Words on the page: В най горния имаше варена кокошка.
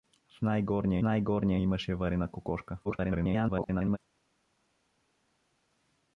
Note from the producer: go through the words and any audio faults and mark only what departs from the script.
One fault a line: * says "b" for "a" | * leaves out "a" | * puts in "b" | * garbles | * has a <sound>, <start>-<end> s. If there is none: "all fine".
* puts in "най горния"
* garbles